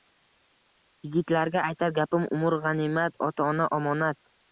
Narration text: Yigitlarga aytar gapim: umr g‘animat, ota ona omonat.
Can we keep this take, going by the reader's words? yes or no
yes